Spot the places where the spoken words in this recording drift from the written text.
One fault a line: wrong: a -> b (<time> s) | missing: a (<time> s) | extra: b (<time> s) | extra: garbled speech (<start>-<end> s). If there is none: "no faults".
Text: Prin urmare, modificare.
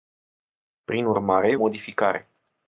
no faults